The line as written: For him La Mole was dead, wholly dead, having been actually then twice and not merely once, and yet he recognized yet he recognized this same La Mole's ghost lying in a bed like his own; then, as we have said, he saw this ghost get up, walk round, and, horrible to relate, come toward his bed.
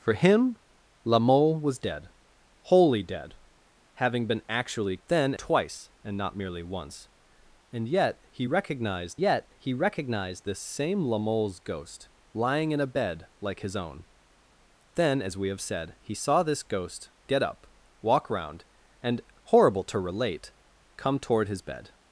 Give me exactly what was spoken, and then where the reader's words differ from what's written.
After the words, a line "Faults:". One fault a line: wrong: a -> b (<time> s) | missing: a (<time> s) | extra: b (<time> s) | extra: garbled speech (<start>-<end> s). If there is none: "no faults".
For him La Mole was dead, wholly dead, having been actually then twice and not merely once, and yet he recognized yet he recognized this same La Mole's ghost lying in a bed like his own; then, as we have said, he saw this ghost get up, walk round, and, horrible to relate, come toward his bed.
Faults:
no faults